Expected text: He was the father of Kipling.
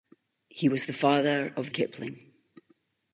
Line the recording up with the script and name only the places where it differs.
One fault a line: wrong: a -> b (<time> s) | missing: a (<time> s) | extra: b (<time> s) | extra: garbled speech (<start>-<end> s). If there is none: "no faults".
no faults